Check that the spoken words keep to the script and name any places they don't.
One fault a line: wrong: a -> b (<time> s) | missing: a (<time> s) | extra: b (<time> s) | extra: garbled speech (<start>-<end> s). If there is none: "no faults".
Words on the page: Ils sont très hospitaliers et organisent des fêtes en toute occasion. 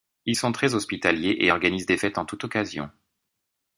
no faults